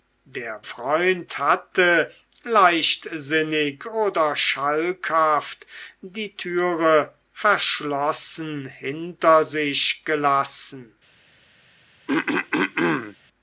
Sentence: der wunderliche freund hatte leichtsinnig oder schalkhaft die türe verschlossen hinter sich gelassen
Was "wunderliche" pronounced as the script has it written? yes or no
no